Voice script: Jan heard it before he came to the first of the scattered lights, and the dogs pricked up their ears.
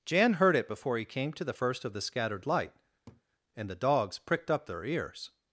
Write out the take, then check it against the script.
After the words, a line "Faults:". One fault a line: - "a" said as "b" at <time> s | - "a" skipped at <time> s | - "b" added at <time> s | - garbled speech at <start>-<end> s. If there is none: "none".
Jan heard it before he came to the first of the scattered light, and the dogs pricked up their ears.
Faults:
- "lights" said as "light" at 2.5 s